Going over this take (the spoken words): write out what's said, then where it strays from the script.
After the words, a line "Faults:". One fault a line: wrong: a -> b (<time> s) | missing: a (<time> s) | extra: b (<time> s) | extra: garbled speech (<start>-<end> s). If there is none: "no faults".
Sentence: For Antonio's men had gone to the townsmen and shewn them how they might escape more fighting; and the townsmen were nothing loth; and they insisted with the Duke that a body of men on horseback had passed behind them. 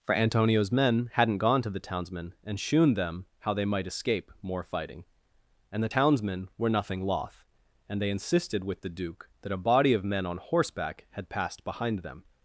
For Antonio's men hadn't gone to the townsmen and shewn them how they might escape more fighting; and the townsmen were nothing loth; and they insisted with the Duke that a body of men on horseback had passed behind them.
Faults:
wrong: had -> hadn't (1.1 s)